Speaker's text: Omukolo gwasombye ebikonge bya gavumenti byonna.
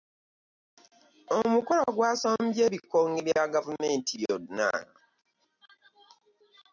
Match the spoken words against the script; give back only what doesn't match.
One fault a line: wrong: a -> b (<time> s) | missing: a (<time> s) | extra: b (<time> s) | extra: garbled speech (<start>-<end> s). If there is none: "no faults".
no faults